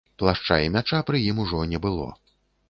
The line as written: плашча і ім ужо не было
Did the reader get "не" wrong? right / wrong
right